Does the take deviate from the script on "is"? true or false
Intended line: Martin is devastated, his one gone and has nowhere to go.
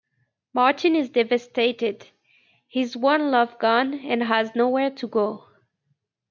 false